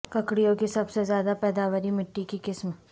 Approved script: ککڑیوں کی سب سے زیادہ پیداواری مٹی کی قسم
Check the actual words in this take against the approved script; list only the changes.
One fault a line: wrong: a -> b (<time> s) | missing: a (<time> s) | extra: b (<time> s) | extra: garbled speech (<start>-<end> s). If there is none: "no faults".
no faults